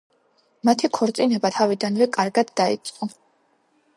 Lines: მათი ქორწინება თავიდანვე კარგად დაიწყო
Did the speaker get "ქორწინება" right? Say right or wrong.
right